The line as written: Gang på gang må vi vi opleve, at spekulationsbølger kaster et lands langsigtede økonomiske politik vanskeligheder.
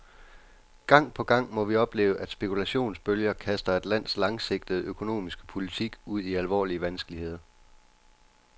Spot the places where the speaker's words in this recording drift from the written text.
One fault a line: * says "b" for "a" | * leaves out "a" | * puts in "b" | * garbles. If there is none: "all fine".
* leaves out "vi"
* puts in "ud i alvorlige"